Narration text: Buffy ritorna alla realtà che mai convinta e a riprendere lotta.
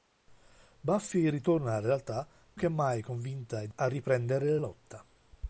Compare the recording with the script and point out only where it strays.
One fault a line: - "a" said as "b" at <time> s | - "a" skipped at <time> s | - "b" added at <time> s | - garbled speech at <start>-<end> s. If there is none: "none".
none